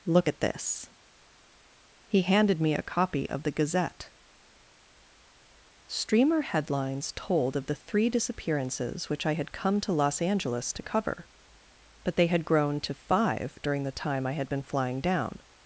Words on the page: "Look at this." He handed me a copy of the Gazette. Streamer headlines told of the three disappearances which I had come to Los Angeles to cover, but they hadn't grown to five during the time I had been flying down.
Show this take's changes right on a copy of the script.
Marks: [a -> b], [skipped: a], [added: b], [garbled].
"Look at this." He handed me a copy of the Gazette. Streamer headlines told of the three disappearances which I had come to Los Angeles to cover, but they [hadn't -> had] grown to five during the time I had been flying down.